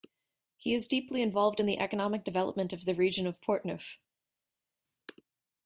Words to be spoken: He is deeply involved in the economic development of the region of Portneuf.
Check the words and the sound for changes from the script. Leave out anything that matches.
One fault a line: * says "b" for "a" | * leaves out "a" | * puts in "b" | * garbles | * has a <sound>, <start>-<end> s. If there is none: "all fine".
all fine